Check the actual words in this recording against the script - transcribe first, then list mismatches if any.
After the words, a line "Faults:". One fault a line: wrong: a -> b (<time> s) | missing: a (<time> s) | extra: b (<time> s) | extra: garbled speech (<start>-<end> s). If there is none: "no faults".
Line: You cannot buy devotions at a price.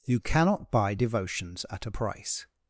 You cannot buy devotions at a price.
Faults:
no faults